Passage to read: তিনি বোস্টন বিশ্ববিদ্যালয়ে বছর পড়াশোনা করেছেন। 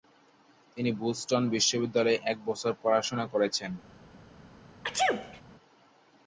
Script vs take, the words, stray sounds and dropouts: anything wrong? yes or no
yes